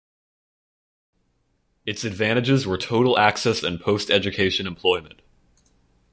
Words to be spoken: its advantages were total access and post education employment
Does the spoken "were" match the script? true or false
true